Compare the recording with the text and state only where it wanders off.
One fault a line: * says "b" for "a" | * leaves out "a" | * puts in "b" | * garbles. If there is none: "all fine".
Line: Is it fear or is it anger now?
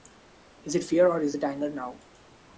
all fine